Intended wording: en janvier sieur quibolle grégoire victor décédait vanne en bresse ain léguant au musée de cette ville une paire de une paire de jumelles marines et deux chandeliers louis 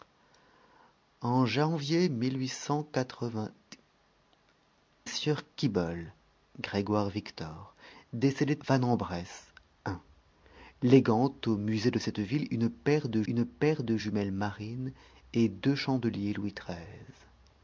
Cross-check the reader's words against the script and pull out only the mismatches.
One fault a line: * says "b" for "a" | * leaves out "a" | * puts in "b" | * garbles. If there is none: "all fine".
all fine